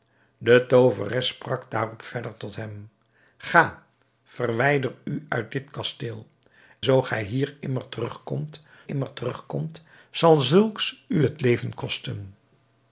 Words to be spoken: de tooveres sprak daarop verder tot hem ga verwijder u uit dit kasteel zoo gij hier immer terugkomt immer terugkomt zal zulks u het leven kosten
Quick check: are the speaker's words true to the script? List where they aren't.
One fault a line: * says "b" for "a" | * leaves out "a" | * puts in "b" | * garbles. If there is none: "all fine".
all fine